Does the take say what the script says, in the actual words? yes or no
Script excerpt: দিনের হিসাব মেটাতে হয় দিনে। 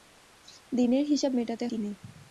no